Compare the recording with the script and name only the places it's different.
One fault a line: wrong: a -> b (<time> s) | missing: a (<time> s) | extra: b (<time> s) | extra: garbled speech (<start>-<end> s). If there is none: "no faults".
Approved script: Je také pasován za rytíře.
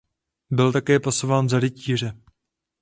wrong: Je -> Byl (0.5 s)